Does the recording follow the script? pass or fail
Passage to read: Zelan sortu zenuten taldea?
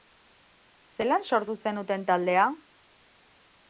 pass